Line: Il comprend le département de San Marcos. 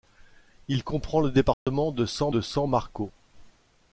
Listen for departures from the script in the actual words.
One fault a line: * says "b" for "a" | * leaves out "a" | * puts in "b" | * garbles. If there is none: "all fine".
* puts in "de San"